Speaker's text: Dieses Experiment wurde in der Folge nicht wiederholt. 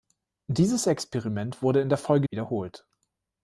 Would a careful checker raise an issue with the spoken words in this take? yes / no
yes